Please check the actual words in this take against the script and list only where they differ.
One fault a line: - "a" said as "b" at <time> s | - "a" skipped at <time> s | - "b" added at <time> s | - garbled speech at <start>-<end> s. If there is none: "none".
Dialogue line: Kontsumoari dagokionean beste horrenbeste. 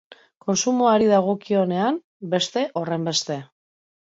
none